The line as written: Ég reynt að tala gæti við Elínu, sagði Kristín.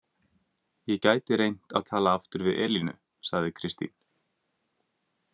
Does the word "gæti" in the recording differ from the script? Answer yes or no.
yes